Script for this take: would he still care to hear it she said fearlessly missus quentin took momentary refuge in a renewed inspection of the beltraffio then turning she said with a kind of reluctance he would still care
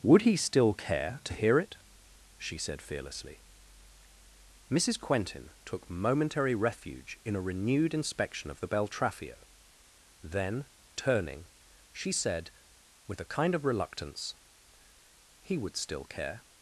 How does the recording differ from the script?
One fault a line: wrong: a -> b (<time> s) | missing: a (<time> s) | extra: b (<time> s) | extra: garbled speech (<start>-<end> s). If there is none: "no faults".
no faults